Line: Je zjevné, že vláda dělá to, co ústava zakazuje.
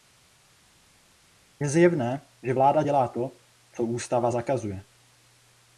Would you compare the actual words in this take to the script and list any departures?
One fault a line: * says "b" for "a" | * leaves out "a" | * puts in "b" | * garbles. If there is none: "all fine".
all fine